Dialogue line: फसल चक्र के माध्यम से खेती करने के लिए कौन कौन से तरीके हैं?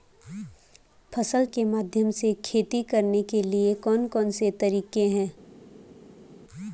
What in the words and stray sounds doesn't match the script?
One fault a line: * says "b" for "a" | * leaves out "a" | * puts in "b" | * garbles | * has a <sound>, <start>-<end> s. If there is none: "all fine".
* leaves out "चक्र"